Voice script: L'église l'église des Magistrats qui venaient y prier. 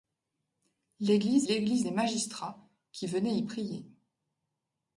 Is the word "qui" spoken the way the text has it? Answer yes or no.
yes